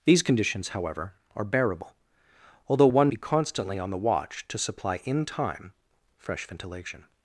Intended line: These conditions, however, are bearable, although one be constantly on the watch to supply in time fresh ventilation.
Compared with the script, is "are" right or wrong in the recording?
right